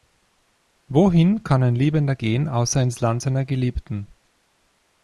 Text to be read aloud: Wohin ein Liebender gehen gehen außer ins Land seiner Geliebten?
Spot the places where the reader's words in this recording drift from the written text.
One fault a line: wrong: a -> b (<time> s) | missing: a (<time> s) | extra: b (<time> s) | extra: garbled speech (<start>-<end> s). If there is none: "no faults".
extra: kann (1.4 s)
missing: gehen (2.5 s)